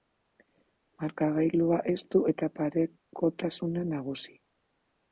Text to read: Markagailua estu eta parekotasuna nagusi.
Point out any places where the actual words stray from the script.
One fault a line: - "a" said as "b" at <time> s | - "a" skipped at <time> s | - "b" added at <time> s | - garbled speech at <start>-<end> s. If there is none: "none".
none